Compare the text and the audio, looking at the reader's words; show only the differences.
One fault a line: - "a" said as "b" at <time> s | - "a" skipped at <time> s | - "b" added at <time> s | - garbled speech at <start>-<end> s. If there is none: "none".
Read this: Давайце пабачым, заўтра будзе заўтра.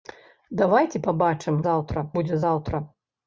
none